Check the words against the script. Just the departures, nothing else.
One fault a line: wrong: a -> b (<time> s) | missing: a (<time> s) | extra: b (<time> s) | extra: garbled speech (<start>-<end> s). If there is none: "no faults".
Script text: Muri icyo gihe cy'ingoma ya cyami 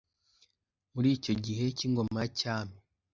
no faults